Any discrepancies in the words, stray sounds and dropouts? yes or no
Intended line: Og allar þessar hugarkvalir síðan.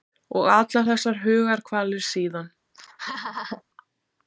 yes